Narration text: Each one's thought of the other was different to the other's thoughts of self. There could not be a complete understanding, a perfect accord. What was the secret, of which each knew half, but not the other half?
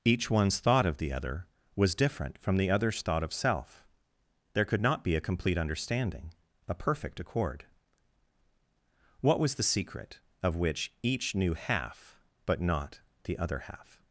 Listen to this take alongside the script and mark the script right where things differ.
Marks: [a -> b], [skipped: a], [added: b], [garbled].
Each one's thought of the other was different [to -> from] the other's [thoughts -> thought] of self. There could not be a complete understanding, a perfect accord. What was the secret, of which each knew half, but not the other half?